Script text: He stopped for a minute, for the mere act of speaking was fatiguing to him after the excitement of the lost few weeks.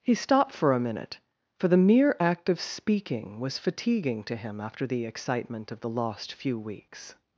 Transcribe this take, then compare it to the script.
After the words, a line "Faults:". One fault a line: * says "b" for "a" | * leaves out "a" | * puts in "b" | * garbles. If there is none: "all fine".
He stopped for a minute, for the mere act of speaking was fatiguing to him after the excitement of the lost few weeks.
Faults:
all fine